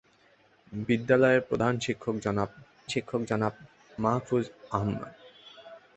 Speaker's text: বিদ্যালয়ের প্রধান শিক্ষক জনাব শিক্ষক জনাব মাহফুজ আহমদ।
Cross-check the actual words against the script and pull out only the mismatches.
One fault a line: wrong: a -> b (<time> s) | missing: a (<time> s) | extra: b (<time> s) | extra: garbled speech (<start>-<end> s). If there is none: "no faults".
no faults